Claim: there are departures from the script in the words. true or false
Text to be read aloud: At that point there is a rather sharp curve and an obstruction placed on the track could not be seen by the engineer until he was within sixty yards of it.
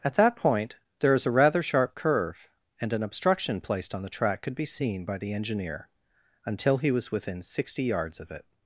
true